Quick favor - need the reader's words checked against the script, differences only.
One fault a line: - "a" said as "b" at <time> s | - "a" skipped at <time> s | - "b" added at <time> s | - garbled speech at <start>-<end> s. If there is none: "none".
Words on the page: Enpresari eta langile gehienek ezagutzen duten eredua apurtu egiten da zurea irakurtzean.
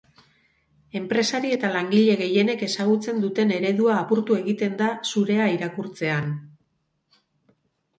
none